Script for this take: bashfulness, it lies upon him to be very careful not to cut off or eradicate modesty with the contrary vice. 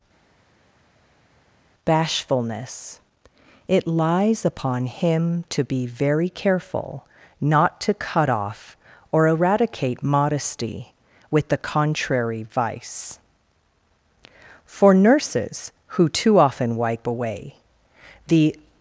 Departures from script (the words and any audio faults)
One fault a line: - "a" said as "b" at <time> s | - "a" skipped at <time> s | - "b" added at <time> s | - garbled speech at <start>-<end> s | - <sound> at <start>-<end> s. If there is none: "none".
- "For nurses who too often wipe away the" added at 14.6 s